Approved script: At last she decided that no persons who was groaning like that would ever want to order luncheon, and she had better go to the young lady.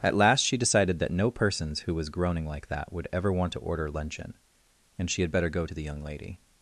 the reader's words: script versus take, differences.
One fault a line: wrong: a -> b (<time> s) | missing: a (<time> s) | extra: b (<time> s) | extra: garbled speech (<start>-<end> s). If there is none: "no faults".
no faults